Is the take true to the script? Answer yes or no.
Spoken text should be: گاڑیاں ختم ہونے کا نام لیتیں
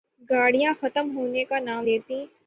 yes